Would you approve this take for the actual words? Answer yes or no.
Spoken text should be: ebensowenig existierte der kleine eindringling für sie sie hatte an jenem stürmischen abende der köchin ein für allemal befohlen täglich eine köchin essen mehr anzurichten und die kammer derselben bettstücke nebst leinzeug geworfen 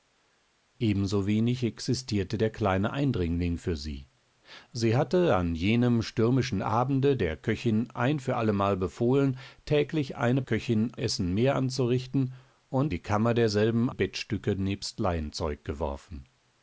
yes